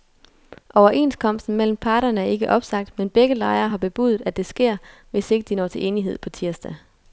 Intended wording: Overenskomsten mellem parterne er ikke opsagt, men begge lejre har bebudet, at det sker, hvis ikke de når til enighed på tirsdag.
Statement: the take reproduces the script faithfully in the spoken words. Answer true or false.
true